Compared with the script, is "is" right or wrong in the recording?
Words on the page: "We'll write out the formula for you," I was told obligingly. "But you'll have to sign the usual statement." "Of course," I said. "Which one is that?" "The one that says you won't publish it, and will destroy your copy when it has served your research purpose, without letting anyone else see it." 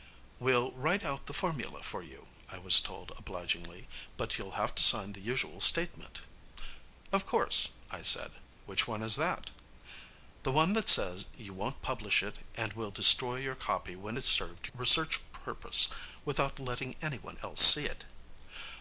right